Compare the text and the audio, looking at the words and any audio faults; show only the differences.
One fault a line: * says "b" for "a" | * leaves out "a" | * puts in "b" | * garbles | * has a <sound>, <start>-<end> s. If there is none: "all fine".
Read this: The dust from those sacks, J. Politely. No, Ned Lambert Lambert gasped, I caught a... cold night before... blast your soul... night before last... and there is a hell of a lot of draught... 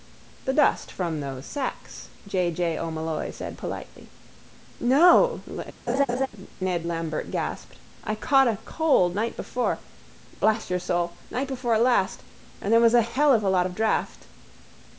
* puts in "J O'Molloy said"
* has a laugh, 5.9-6.3 s
* leaves out "Lambert"
* says "was" for "is"